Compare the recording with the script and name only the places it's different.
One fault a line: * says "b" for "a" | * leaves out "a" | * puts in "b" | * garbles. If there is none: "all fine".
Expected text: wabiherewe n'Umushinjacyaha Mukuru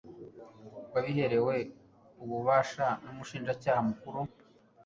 * puts in "ububasha"